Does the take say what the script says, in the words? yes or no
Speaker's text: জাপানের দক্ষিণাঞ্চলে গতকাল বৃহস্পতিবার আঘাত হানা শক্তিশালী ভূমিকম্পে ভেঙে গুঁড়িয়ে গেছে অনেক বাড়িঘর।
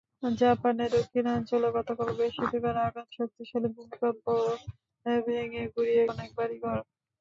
no